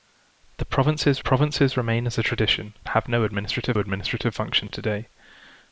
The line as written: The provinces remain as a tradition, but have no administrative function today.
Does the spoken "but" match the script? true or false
false